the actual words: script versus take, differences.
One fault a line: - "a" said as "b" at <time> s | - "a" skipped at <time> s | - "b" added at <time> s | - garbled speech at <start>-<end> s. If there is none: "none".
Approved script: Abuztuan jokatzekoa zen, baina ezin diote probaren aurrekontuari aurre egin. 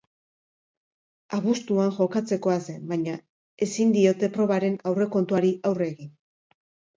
none